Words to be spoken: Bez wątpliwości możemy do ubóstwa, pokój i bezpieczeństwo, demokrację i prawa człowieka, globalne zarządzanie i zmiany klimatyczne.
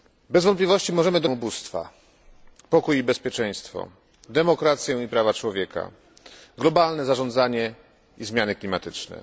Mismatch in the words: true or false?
false